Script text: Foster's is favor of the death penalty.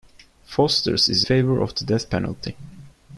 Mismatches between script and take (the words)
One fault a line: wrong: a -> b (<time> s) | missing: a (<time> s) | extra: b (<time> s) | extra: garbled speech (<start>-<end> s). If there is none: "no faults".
no faults